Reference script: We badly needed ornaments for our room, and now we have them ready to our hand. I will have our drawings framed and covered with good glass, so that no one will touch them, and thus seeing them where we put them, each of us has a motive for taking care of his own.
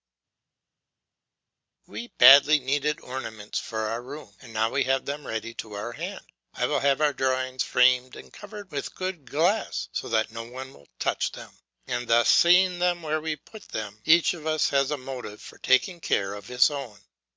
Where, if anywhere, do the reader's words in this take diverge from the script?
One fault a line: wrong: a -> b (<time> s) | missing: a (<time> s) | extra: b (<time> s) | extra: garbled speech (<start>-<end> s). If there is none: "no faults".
no faults